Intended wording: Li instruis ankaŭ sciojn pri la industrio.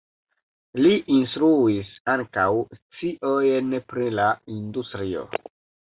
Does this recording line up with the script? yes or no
yes